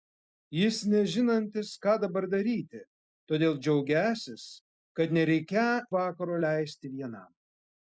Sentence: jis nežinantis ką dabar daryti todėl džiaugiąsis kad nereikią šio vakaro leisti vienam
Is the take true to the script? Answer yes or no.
no